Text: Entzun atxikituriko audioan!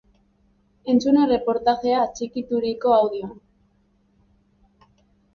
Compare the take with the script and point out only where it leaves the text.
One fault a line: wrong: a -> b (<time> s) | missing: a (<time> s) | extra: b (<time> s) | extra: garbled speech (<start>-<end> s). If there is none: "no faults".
extra: erreportajea (1.2 s)